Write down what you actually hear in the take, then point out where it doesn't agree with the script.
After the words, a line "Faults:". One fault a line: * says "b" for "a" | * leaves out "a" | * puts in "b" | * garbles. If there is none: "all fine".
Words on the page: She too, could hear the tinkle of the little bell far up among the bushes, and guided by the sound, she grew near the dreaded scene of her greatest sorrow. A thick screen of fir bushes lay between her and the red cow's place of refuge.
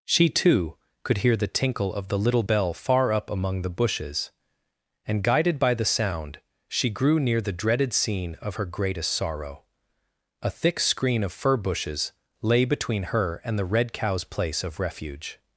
She too, could hear the tinkle of the little bell far up among the bushes, and guided by the sound, she grew near the dreaded scene of her greatest sorrow. A thick screen of fir bushes lay between her and the red cow's place of refuge.
Faults:
all fine